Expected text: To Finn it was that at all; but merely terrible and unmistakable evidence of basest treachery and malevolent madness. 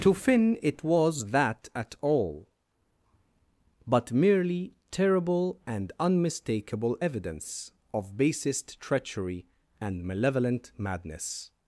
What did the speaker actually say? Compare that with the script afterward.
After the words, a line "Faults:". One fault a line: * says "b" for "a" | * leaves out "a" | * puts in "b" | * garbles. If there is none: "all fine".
To Finn it was that at all; but merely terrible and unmistakable evidence of basest treachery and malevolent madness.
Faults:
all fine